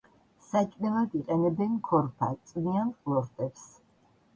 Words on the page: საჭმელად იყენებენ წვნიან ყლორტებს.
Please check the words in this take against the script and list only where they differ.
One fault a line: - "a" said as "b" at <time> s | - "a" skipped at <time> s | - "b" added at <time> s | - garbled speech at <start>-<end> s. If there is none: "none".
- "ქორფა" added at 1.9 s